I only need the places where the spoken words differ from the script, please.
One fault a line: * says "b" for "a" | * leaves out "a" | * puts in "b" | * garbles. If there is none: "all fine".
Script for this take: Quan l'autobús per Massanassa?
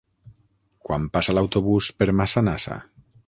* puts in "passa"